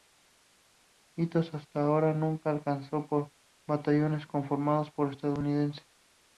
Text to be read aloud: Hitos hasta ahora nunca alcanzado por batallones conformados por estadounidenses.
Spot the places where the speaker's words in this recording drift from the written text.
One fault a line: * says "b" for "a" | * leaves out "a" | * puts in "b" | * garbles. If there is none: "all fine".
all fine